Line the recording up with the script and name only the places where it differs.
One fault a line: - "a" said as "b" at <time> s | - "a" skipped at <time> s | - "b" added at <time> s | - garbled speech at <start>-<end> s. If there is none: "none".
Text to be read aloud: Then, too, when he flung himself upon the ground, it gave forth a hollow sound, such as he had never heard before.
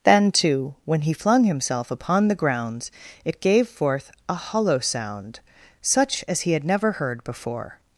- "ground" said as "grounds" at 2.4 s